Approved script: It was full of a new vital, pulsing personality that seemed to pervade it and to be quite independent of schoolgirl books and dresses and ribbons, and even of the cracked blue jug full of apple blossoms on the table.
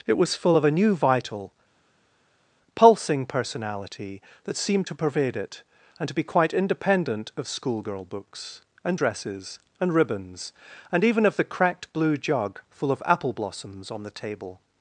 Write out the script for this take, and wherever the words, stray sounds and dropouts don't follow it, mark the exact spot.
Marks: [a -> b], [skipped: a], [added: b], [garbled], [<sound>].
It was full of a new vital, pulsing personality that seemed to pervade it and to be quite independent of schoolgirl books and dresses and ribbons, and even of the cracked blue jug full of apple blossoms on the table.